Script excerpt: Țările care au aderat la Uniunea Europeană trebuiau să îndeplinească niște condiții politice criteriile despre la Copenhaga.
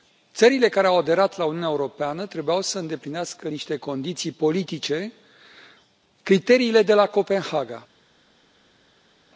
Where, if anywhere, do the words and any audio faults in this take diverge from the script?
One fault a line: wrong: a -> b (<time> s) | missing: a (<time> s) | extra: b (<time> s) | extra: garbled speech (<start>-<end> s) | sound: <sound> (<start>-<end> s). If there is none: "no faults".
wrong: despre -> de (6.8 s)